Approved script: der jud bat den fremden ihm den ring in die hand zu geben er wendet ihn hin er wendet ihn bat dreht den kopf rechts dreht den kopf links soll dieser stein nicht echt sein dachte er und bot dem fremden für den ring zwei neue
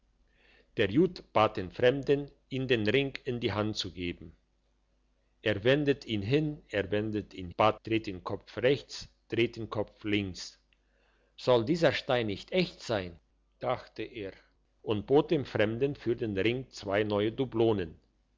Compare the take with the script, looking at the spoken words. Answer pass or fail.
pass